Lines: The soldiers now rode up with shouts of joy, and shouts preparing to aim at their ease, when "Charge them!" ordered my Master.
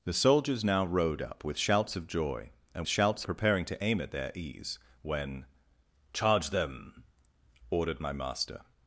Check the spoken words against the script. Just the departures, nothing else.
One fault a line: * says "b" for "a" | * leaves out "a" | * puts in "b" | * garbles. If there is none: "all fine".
all fine